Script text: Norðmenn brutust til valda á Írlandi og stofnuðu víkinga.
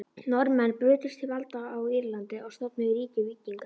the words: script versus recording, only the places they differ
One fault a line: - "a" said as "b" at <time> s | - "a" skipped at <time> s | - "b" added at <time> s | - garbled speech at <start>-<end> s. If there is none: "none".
- "ríki" added at 3.0 s